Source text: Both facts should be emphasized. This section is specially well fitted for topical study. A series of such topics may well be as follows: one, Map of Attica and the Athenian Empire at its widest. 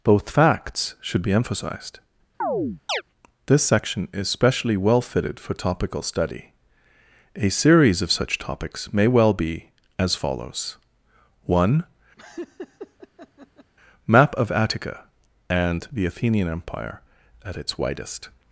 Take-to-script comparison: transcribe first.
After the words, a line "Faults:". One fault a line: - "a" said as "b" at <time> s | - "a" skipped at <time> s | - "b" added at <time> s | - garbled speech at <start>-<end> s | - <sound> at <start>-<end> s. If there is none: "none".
Both facts should be emphasized. This section is specially well fitted for topical study. A series of such topics may well be as follows: one, Map of Attica and the Athenian Empire at its widest.
Faults:
- chirp at 2.4-3.0 s
- laugh at 12.2-13.7 s